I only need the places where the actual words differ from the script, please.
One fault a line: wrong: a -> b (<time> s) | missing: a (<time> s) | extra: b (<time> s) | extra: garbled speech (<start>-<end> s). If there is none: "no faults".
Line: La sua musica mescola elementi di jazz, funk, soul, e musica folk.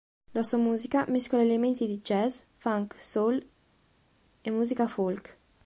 no faults